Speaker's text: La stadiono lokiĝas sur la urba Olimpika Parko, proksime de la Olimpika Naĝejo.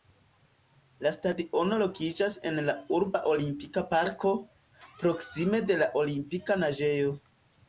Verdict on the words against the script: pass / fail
fail